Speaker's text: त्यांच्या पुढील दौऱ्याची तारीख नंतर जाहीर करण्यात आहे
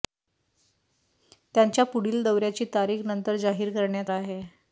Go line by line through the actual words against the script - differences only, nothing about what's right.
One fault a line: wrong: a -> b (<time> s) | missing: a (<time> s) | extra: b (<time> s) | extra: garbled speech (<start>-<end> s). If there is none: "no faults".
no faults